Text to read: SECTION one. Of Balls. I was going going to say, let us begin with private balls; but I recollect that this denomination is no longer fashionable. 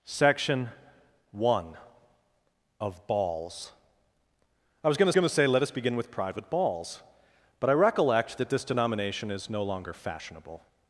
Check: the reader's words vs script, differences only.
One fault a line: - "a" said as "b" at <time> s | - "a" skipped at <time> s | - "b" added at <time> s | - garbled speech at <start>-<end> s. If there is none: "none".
none